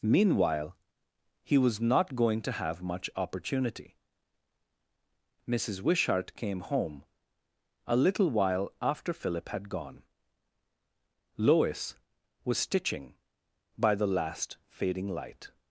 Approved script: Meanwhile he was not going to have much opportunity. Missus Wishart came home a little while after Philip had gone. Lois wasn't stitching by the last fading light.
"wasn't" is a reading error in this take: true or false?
true